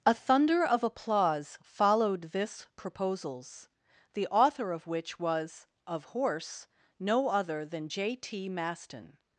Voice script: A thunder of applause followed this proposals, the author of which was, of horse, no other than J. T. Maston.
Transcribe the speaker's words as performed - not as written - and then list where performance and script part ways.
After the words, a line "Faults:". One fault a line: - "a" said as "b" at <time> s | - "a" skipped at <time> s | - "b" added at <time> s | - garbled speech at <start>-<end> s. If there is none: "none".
A thunder of applause followed this proposals, the author of which was, of horse, no other than J. T. Maston.
Faults:
none